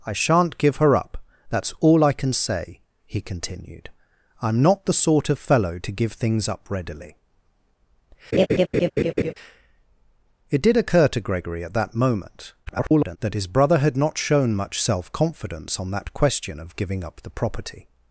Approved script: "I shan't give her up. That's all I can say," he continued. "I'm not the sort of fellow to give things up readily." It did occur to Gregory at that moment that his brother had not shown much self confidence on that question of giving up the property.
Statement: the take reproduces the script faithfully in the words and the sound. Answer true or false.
false